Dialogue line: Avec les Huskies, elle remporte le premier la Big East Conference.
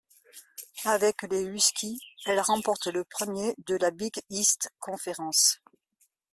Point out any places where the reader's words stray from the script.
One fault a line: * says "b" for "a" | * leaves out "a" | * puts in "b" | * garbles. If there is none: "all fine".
* puts in "de"